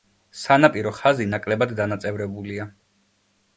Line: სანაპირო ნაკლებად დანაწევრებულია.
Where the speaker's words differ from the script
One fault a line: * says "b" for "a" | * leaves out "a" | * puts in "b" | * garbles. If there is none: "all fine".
* puts in "ხაზი"